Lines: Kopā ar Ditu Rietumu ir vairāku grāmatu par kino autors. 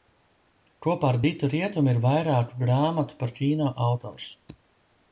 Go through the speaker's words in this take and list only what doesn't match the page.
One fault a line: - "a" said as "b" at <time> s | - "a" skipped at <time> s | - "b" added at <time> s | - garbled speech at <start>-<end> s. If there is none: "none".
none